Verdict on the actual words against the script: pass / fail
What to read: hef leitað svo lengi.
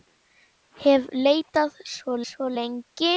fail